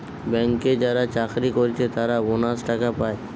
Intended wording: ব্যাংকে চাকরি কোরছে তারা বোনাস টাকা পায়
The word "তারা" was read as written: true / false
true